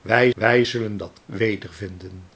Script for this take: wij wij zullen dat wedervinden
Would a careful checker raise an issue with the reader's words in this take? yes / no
no